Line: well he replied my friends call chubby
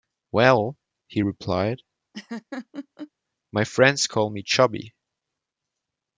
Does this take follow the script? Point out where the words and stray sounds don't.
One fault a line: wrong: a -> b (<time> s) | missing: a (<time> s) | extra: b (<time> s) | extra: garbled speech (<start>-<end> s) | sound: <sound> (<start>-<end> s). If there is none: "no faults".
sound: laugh (2.1-3.1 s)
extra: me (4.3 s)